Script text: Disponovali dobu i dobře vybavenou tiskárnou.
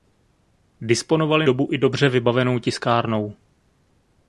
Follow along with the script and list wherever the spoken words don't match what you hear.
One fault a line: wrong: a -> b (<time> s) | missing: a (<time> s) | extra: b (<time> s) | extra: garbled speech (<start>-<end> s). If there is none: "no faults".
no faults